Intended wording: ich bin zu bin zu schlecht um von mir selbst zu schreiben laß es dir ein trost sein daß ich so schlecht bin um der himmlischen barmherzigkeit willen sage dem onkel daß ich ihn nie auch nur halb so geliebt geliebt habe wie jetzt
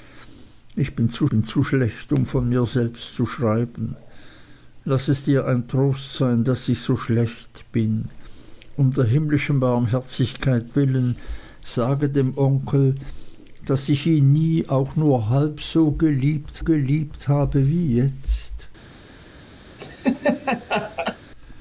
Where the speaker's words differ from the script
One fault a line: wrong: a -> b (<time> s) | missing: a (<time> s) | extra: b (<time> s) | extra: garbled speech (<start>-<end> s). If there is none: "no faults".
no faults